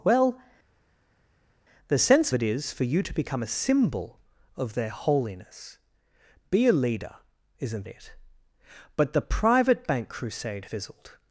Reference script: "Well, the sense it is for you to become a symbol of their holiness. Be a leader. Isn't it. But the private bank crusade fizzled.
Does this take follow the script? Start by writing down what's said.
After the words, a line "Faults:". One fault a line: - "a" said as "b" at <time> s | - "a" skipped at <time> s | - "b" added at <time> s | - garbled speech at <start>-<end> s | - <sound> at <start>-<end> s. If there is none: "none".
"Well, the sense it is for you to become a symbol of their holiness. Be a leader. Isn't it. But the private bank crusade fizzled.
Faults:
none